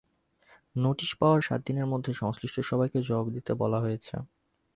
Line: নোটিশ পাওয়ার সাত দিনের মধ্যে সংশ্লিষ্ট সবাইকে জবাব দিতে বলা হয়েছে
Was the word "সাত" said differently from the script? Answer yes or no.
no